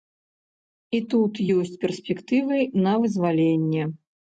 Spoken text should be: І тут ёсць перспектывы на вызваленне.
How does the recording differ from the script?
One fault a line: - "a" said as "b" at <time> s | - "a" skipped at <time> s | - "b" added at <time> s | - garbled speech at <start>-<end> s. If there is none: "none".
none